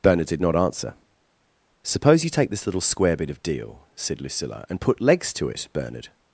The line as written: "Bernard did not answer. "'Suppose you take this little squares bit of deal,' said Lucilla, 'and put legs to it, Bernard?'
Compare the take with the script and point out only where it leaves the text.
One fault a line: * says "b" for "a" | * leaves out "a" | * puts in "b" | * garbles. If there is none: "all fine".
* says "square" for "squares"